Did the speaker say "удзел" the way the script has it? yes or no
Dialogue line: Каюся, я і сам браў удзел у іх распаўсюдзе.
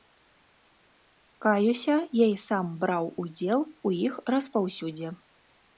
yes